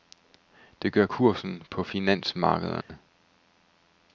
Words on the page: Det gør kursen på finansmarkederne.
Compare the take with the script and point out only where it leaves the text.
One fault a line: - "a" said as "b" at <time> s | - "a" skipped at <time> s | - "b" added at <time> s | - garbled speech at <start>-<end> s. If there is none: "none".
none